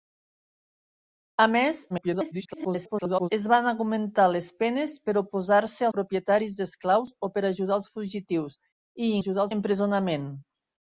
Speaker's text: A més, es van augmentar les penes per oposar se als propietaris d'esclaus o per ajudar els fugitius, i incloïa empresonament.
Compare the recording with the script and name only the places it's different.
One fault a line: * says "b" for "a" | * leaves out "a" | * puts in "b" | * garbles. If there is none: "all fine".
* garbles
* leaves out "als"
* says "ajudar" for "incloïa"